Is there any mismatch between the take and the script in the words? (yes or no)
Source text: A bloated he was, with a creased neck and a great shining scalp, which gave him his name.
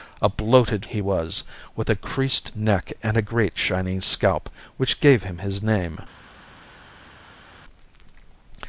no